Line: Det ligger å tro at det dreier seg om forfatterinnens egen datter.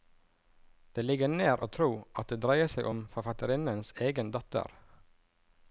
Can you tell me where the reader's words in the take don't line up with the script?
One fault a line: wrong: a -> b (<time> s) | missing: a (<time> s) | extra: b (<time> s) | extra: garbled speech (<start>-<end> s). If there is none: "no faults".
extra: nær (1.3 s)